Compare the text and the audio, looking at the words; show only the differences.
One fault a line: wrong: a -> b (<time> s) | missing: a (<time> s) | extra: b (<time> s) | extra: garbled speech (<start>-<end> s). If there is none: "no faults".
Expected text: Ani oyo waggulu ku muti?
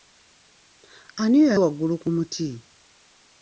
no faults